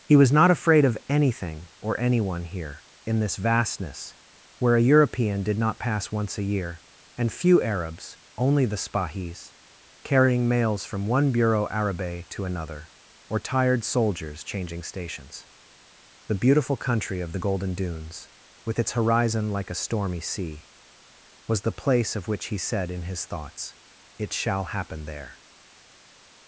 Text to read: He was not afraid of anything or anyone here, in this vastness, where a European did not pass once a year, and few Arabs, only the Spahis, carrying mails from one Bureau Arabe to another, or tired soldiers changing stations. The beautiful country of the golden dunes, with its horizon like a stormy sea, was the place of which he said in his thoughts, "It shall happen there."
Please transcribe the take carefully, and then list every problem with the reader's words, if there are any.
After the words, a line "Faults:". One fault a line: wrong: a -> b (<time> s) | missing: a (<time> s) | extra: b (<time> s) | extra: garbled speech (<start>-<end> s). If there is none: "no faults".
He was not afraid of anything or anyone here, in this vastness, where a European did not pass once a year, and few Arabs, only the Spahis, carrying mails from one Bureau Arabe to another, or tired soldiers changing stations. The beautiful country of the golden dunes, with its horizon like a stormy sea, was the place of which he said in his thoughts, "It shall happen there."
Faults:
no faults